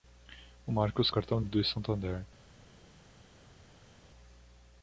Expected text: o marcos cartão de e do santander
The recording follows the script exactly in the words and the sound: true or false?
true